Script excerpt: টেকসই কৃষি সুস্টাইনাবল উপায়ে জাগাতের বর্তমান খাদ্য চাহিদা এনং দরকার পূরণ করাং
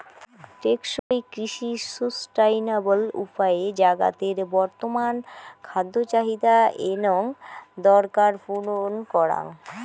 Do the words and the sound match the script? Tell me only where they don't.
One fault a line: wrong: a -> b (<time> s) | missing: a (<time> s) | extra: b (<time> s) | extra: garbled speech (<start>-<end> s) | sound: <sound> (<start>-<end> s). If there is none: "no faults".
sound: dropout (1.0-1.1 s)